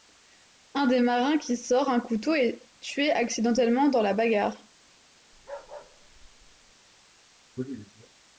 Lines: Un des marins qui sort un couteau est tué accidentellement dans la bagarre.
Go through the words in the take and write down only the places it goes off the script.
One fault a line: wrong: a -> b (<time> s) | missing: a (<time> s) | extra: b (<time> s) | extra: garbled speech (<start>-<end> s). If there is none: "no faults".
no faults